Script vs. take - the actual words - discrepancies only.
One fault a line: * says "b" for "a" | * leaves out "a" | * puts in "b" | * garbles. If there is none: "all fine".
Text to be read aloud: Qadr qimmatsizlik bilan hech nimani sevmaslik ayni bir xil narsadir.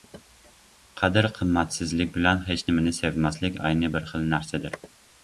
all fine